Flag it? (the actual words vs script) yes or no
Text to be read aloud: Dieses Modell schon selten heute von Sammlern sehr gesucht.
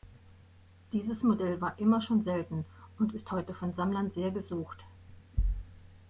yes